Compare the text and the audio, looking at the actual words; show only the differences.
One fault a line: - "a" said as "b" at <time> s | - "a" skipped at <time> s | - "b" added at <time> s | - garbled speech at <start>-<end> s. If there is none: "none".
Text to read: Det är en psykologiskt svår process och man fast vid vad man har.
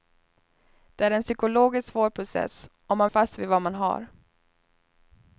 none